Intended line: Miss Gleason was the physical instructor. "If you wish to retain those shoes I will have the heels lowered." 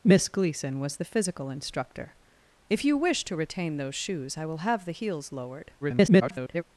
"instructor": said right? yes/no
yes